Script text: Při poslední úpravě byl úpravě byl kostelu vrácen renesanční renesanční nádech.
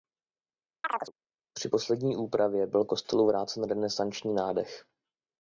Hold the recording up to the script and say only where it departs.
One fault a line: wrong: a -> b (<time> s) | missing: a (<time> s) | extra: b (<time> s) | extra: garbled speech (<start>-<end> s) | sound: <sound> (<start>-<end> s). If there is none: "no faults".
sound: chirp (0.8-1.1 s)
missing: úpravě byl (2.8 s)
missing: renesanční (4.3 s)